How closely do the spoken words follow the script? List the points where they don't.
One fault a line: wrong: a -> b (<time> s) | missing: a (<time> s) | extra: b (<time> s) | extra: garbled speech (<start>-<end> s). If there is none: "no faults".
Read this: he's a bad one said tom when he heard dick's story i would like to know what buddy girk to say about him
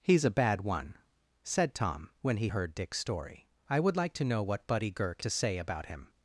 no faults